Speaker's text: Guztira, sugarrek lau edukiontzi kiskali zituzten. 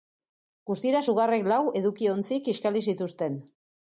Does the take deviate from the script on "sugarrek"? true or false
false